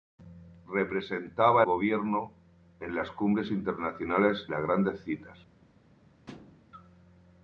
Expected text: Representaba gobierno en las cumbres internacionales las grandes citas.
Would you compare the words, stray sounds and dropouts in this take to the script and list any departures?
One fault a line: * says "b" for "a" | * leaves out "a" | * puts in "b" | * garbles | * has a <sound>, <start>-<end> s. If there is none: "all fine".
* has a thud, 6.3-6.6 s